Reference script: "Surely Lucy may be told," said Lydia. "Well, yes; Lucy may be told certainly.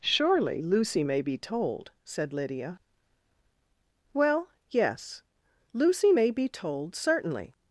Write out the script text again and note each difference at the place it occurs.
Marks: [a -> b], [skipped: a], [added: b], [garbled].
"Surely Lucy may be told," said Lydia. "Well, yes; Lucy may be told certainly.